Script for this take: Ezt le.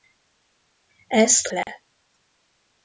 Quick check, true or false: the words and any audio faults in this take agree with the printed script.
false